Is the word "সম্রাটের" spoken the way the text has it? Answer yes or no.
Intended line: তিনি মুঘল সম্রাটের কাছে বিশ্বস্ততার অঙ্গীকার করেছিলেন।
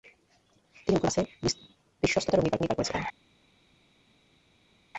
no